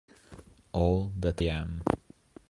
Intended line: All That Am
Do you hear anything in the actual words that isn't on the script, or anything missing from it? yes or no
no